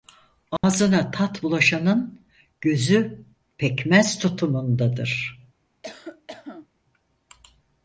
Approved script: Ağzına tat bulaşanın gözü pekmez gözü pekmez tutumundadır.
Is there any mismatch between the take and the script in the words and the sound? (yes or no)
yes